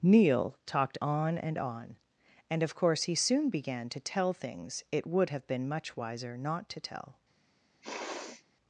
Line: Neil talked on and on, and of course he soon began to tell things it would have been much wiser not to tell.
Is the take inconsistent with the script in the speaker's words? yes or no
no